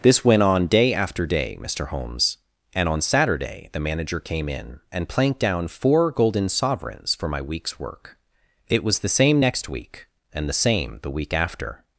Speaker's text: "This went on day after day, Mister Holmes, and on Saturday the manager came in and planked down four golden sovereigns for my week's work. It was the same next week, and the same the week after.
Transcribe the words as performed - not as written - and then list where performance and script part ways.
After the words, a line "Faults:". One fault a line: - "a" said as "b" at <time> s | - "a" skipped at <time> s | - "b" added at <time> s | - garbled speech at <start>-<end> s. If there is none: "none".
"This went on day after day, Mister Holmes, and on Saturday the manager came in and planked down four golden sovereigns for my week's work. It was the same next week, and the same the week after.
Faults:
none